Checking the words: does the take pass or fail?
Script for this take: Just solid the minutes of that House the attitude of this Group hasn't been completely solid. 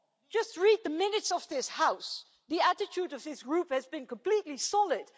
fail